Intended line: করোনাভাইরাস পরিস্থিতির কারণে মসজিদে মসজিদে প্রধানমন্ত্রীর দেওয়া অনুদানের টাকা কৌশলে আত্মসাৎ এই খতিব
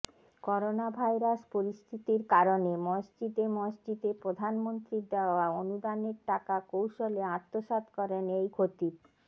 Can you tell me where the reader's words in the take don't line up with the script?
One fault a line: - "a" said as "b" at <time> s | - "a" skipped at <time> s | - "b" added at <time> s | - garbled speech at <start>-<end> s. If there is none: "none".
- "করেন" added at 8.0 s